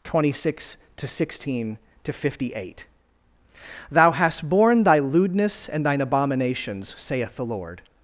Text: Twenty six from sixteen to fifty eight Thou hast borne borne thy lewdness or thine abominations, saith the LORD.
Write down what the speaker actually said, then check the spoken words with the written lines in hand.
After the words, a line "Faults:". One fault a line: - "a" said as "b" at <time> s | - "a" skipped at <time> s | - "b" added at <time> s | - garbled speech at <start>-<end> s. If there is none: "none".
Twenty six to sixteen to fifty eight Thou hast borne thy lewdness and thine abominations, saith the LORD.
Faults:
- "from" said as "to" at 1.0 s
- "borne" skipped at 4.8 s
- "or" said as "and" at 5.7 s